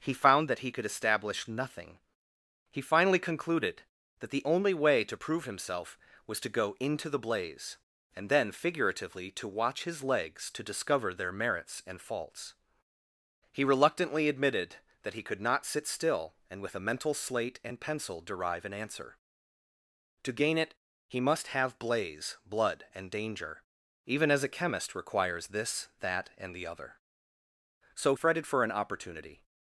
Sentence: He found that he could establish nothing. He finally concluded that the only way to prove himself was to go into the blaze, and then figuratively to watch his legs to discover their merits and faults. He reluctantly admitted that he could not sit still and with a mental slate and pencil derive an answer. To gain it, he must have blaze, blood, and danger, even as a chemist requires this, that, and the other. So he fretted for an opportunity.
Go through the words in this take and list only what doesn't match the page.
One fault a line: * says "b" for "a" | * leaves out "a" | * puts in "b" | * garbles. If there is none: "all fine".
* leaves out "he"